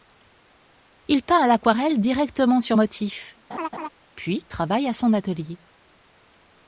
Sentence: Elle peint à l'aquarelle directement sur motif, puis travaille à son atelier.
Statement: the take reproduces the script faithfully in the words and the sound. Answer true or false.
false